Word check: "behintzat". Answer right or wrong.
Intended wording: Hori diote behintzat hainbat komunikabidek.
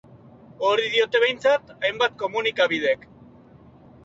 right